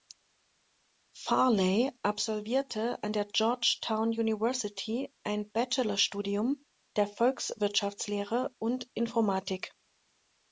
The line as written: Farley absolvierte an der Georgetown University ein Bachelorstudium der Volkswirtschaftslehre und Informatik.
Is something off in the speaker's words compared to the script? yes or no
no